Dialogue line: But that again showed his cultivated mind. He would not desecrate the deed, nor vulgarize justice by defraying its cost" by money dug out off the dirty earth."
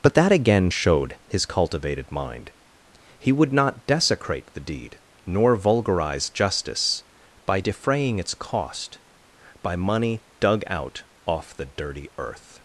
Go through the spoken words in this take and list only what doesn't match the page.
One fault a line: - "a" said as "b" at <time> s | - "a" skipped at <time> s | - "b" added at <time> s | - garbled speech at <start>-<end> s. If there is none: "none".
none